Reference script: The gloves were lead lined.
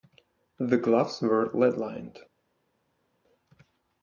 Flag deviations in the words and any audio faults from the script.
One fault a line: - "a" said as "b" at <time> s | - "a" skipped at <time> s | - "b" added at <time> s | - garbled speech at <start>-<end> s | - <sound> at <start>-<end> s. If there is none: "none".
none